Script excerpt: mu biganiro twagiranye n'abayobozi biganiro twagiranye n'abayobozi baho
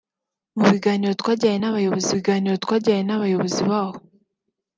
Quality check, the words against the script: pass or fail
pass